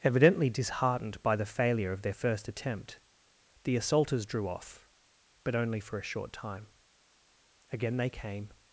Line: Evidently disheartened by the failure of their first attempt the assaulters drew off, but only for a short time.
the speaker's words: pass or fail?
fail